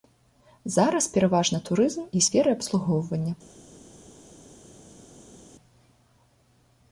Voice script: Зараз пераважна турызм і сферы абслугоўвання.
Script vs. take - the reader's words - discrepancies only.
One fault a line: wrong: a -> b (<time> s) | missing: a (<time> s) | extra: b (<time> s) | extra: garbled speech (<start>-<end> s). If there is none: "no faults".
no faults